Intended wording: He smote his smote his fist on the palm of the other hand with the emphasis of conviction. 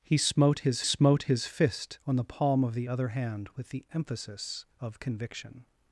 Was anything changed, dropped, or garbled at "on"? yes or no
no